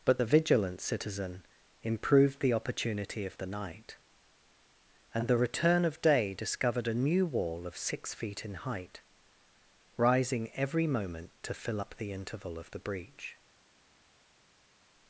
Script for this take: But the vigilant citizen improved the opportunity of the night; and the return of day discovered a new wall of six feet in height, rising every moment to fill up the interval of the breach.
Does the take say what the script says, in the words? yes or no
yes